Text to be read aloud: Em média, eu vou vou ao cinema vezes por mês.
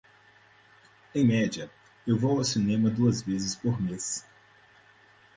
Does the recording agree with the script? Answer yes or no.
no